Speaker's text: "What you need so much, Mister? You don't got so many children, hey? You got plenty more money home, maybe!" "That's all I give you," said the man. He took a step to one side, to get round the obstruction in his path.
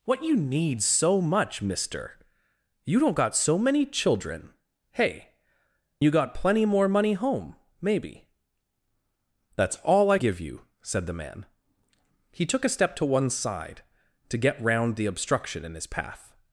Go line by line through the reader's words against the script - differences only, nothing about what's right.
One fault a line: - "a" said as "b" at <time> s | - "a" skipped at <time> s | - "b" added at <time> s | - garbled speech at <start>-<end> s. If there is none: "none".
none